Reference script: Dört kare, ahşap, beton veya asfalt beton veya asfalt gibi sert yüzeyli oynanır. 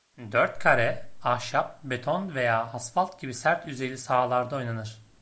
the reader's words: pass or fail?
fail